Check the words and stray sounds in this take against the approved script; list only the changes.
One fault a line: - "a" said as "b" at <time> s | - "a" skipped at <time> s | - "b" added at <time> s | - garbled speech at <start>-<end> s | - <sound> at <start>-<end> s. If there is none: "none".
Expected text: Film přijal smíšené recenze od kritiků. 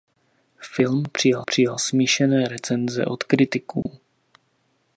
- "přijal" added at 1.4 s
- dropout at 3.8-3.9 s